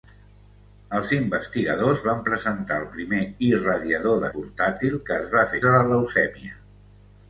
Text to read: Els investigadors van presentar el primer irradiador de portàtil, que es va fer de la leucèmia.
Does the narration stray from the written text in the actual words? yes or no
no